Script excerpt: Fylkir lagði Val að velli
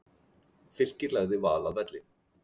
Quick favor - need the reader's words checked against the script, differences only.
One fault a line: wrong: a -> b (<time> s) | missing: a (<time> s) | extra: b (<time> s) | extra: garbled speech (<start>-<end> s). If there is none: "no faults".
no faults